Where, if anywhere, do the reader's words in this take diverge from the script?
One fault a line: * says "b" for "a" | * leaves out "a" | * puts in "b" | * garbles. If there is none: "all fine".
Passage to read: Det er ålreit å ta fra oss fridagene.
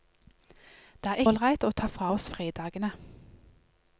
all fine